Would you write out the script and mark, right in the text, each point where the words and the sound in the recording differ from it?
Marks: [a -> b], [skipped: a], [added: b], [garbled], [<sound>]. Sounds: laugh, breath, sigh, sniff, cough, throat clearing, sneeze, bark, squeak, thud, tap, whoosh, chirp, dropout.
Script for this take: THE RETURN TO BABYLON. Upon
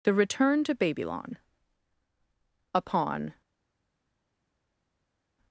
THE RETURN TO BABYLON. Upon